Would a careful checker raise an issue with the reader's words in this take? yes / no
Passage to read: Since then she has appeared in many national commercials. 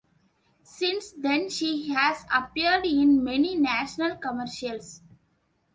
no